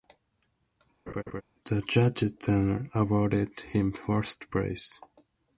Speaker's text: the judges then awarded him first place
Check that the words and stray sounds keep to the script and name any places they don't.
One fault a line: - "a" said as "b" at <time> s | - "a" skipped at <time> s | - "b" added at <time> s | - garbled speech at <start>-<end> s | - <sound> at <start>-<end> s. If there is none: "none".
- laugh at 1.1-1.4 s